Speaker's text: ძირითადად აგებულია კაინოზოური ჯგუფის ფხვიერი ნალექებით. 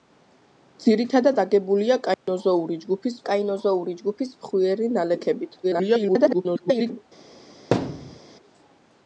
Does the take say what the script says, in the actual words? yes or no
no